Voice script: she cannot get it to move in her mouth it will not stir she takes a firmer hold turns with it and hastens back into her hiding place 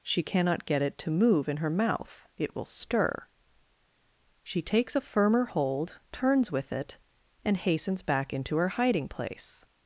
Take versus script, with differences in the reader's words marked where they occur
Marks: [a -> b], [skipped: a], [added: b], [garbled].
she cannot get it to move in her mouth it will [skipped: not] stir she takes a firmer hold turns with it and hastens back into her hiding place